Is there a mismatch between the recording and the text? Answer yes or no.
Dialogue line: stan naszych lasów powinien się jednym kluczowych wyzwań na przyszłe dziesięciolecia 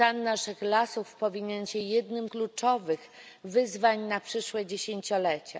no